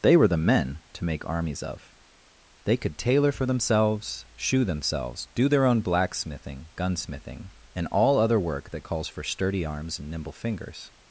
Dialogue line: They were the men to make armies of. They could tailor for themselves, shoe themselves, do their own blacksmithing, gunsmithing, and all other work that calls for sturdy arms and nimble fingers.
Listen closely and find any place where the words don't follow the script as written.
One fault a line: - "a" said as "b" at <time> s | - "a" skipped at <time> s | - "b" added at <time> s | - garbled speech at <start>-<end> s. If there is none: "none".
none